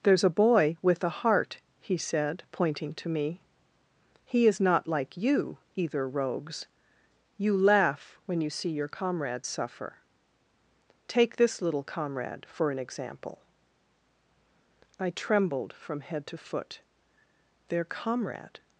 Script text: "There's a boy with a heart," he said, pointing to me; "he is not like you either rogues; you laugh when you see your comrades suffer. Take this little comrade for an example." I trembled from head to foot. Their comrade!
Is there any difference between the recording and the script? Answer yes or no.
no